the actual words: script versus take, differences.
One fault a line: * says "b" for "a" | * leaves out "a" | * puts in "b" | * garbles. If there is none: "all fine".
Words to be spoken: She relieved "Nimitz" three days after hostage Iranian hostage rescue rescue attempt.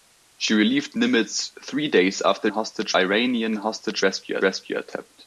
all fine